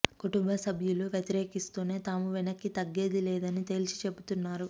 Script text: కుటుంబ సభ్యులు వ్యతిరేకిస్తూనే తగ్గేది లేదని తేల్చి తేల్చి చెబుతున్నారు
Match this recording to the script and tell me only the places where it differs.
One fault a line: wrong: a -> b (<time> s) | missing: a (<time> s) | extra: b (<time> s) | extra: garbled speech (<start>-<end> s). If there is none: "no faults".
extra: తాము వెనక్కి (2.0 s)
missing: తేల్చి (4.0 s)